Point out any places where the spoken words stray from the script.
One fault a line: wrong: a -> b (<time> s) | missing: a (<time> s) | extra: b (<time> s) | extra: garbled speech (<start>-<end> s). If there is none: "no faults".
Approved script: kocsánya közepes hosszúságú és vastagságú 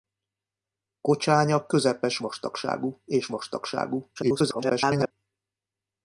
wrong: hosszúságú -> vastagságú (2.2 s)
extra: garbled speech (4.2-5.1 s)